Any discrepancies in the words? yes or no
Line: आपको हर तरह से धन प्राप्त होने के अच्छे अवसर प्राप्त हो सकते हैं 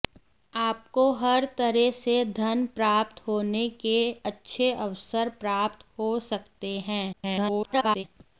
yes